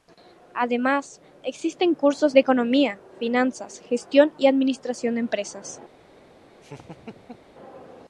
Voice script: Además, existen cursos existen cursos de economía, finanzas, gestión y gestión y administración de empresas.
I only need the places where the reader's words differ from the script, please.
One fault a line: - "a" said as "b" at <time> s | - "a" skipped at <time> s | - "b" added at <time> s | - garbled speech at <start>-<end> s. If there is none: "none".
- "existen cursos" skipped at 2.4 s
- "gestión y" skipped at 4.5 s